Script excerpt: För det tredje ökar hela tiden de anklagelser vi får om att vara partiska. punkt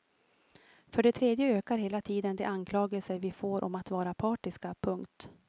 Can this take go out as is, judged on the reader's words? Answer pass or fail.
pass